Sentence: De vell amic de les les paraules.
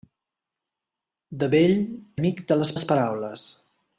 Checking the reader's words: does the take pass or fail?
pass